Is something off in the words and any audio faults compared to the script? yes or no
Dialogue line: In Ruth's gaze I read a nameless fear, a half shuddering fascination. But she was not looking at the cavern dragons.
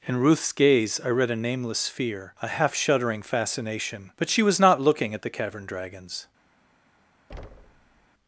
yes